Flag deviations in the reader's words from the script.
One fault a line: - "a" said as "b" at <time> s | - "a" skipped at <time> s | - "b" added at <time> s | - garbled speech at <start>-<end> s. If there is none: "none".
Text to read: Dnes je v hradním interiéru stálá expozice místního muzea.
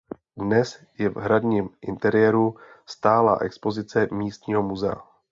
none